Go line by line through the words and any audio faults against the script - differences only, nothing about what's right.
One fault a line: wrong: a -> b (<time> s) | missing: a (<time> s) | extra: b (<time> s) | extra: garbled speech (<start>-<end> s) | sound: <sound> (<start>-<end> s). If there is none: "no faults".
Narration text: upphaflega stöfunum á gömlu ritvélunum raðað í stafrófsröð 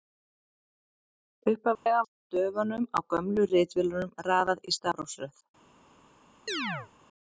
sound: dropout (1.7-1.9 s)
sound: chirp (6.5-6.9 s)